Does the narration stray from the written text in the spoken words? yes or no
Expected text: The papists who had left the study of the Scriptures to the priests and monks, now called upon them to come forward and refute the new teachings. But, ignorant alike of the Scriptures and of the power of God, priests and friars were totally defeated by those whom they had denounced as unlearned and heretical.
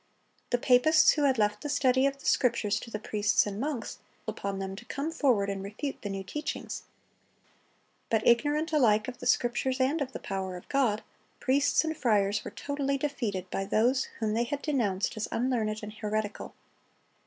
yes